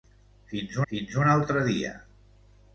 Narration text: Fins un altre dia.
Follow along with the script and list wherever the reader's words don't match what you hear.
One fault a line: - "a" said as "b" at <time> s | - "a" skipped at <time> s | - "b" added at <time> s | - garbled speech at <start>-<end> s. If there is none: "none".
- "fins" added at 0.9 s